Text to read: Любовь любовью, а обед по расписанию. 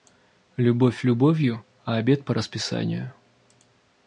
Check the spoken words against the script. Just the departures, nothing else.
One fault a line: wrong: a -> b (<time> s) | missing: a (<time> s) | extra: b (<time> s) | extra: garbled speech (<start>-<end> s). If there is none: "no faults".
no faults